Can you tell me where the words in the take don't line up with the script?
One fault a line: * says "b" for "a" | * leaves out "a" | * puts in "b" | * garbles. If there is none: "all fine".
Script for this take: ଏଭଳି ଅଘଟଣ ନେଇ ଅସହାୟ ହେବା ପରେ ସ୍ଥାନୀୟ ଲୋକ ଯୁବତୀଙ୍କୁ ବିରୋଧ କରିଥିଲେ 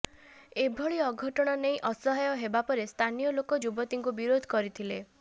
all fine